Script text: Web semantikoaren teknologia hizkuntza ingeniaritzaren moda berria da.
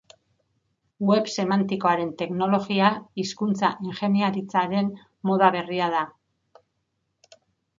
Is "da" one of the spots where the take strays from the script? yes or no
no